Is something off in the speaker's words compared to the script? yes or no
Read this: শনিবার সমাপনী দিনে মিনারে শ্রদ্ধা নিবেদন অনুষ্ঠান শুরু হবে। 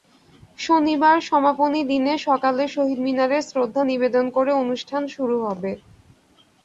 yes